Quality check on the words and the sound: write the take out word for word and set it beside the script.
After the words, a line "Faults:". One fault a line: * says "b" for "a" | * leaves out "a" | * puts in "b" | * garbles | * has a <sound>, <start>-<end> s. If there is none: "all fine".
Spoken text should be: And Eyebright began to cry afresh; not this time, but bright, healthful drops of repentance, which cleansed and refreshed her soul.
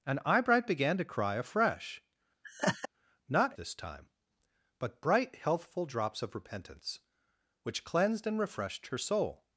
And Eyebright began to cry afresh; not this time, but bright, healthful drops of repentance, which cleansed and refreshed her soul.
Faults:
* has a laugh, 2.4-2.9 s